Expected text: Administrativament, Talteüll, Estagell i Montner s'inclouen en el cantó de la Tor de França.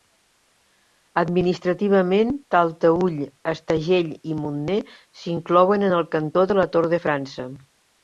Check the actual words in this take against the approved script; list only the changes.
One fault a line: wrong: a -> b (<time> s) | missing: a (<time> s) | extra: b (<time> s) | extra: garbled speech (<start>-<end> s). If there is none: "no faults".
no faults